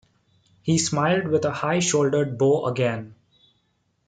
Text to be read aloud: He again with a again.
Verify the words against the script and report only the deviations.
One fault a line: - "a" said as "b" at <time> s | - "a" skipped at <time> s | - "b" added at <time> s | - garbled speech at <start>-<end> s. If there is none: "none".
- "again" said as "smiled" at 0.8 s
- "high shouldered bow" added at 1.5 s